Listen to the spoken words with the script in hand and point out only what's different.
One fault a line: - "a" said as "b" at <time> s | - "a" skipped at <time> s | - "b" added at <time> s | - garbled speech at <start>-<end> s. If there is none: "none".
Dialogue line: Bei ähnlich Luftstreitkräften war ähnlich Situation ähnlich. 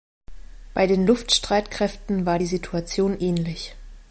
- "ähnlich" said as "den" at 0.9 s
- "ähnlich" said as "die" at 2.4 s